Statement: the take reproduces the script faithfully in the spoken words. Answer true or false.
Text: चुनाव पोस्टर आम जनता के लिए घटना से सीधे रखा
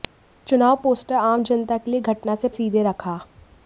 true